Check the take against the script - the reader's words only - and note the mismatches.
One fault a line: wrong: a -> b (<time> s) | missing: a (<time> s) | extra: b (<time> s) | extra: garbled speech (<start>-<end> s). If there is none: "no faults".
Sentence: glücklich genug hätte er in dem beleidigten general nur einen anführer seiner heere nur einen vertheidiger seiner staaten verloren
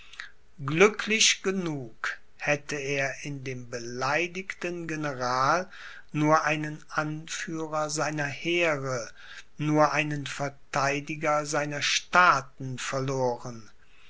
no faults